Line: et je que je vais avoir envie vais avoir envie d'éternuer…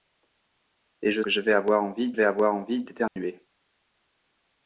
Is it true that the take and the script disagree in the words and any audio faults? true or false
true